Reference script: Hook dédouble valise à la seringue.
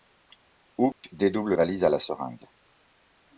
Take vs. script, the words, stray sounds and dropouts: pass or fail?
fail